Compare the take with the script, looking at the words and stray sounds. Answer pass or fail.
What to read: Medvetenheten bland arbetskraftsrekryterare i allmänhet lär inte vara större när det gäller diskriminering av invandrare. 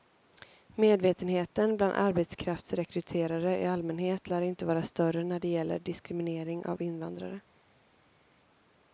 pass